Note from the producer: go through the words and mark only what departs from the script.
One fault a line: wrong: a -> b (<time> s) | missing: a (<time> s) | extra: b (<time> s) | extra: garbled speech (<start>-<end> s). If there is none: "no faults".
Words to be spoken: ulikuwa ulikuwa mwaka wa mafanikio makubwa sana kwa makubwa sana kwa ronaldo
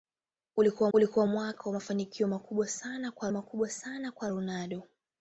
no faults